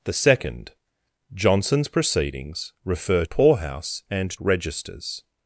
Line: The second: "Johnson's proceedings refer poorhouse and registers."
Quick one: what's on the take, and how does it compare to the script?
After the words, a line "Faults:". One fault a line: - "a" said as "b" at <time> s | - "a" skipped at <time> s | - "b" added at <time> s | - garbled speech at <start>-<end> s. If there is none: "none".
The second: "Johnson's proceedings refer poorhouse and registers."
Faults:
none